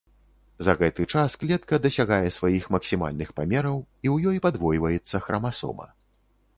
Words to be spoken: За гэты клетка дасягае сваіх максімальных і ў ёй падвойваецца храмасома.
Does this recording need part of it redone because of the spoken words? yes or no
yes